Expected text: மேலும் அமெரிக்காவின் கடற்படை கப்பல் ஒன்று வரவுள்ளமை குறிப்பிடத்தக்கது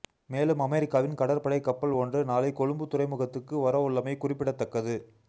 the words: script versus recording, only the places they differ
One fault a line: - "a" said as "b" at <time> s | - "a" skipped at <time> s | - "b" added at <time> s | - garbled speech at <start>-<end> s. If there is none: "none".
- "நாளை கொழும்பு துறைமுகத்துக்கு" added at 2.2 s